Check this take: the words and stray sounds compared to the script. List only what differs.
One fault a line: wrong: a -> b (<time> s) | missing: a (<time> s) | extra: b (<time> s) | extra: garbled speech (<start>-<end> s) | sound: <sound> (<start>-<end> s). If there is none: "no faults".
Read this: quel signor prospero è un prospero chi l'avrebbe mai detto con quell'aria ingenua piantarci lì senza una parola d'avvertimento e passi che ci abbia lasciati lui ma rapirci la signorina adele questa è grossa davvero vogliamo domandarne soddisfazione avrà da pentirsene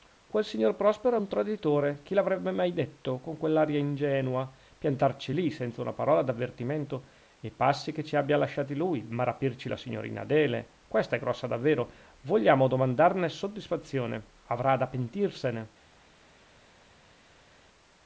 wrong: prospero -> traditore (1.3 s)